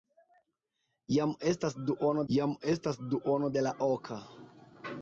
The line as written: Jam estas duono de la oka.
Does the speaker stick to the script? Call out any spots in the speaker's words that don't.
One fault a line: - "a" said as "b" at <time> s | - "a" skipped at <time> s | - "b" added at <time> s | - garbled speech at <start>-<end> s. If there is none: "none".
- "jam estas duono" added at 2.4 s